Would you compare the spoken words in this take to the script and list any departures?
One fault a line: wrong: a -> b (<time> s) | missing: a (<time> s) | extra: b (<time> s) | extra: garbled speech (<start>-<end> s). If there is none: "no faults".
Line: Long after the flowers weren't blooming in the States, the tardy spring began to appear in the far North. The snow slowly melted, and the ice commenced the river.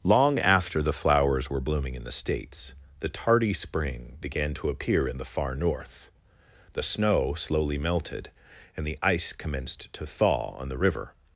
wrong: weren't -> were (1.5 s)
extra: to thaw on (9.9 s)